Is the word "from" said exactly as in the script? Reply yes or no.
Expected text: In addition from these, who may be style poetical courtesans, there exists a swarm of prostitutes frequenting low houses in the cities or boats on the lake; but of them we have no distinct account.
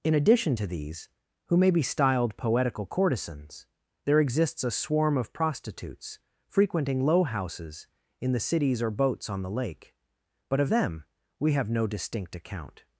no